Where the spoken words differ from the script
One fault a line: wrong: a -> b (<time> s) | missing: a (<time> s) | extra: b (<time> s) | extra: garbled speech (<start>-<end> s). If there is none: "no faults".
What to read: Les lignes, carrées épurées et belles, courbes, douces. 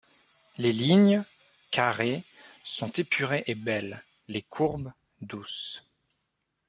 extra: sont (2.6 s)
extra: les (4.3 s)